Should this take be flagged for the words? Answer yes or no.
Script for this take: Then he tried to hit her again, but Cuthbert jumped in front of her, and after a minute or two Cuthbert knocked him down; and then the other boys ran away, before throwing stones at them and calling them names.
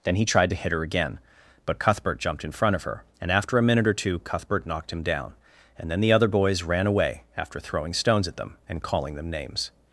yes